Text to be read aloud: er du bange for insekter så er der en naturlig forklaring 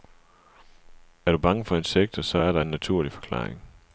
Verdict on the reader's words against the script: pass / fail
pass